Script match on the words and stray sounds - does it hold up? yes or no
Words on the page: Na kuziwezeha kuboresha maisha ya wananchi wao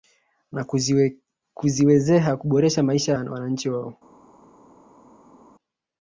yes